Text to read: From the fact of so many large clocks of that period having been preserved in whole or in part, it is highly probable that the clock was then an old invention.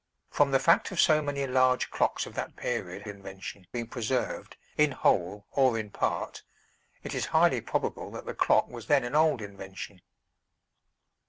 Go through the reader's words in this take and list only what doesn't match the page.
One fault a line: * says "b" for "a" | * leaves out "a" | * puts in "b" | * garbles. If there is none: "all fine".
* says "invention" for "having"